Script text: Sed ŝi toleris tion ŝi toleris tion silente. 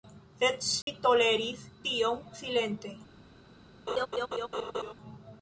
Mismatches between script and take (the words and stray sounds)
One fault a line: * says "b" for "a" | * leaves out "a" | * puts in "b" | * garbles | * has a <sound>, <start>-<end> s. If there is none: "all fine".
* has a dropout, 0.8-0.9 s
* leaves out "ŝi toleris tion"
* has a laugh, 3.9-4.9 s